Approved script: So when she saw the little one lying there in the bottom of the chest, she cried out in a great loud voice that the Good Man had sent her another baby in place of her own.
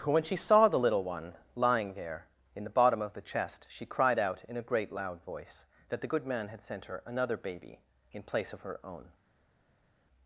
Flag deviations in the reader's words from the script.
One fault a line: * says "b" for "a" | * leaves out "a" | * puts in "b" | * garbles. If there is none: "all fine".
* leaves out "So"